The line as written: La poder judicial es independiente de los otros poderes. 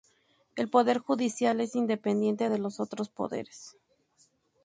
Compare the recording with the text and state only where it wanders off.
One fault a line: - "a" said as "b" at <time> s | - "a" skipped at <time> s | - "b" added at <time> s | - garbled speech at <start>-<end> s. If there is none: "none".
- "La" said as "El" at 0.6 s